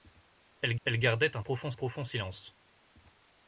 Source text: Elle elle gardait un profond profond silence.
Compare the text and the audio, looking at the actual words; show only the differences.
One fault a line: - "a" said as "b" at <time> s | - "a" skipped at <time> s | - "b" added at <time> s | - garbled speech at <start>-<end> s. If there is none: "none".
none